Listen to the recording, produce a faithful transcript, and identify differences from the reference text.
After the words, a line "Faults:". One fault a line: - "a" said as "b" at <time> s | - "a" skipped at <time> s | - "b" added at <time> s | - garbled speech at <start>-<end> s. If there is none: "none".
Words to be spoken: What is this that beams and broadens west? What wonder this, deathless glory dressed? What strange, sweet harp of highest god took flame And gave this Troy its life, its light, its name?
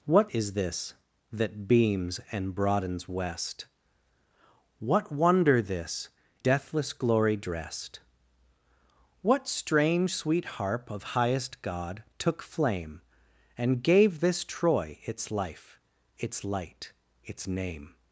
What is this that beams and broadens west? What wonder this, deathless glory dressed? What strange, sweet harp of highest god took flame And gave this Troy its life, its light, its name?
Faults:
none